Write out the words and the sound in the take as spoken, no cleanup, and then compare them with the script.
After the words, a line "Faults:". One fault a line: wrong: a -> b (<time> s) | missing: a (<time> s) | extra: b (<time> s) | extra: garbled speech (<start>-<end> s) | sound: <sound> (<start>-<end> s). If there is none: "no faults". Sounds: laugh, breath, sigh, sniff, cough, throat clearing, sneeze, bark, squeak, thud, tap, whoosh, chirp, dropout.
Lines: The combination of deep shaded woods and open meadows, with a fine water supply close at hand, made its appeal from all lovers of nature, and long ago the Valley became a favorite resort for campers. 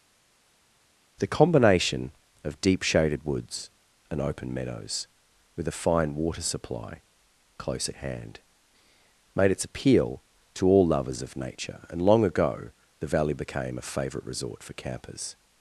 The combination of deep shaded woods and open meadows, with a fine water supply close at hand, made its appeal to all lovers of nature, and long ago the Valley became a favorite resort for campers.
Faults:
wrong: from -> to (10.5 s)